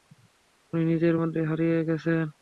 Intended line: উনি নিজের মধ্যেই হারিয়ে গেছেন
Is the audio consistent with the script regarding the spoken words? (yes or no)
yes